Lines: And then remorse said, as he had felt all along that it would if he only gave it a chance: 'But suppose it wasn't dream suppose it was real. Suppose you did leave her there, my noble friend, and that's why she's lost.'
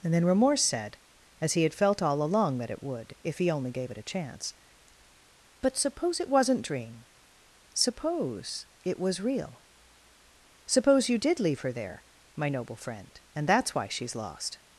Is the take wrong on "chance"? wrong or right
right